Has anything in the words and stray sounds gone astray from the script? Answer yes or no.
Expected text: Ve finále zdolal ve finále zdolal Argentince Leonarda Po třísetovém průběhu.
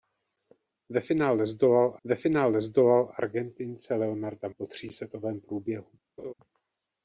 yes